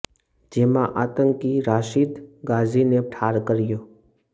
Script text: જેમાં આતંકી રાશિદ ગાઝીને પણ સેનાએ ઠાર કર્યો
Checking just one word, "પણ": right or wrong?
wrong